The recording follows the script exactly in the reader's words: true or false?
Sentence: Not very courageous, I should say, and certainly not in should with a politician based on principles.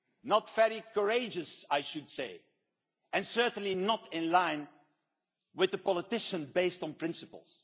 false